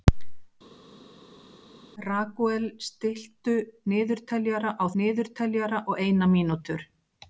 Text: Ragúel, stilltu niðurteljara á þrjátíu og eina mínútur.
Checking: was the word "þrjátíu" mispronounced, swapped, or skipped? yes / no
yes